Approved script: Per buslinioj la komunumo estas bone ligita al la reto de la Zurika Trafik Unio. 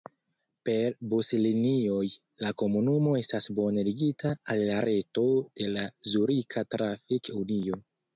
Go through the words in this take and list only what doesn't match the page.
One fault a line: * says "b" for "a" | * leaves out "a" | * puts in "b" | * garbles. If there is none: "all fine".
all fine